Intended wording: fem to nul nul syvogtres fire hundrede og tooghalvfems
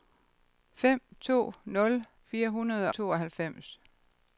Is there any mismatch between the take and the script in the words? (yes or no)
yes